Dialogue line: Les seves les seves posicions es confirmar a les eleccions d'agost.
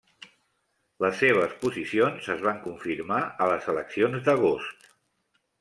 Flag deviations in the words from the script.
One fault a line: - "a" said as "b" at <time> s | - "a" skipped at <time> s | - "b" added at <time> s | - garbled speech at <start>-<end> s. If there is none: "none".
- "les seves" skipped at 1.5 s
- "van" added at 2.5 s